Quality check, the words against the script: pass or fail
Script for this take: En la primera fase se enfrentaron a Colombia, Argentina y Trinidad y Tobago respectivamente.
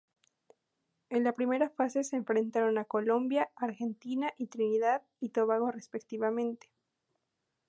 pass